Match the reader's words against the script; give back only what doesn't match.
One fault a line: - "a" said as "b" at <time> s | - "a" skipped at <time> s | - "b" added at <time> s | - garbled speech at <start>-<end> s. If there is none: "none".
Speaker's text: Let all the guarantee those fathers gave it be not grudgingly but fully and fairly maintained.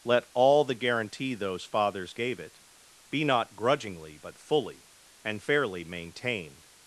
none